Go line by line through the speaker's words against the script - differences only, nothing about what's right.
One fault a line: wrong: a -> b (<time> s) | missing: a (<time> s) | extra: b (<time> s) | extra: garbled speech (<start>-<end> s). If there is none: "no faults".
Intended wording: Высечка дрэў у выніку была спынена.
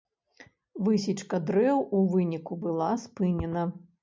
no faults